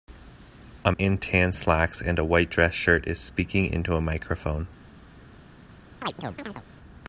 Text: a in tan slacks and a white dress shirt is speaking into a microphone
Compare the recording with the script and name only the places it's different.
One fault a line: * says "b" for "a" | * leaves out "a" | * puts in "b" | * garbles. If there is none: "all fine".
all fine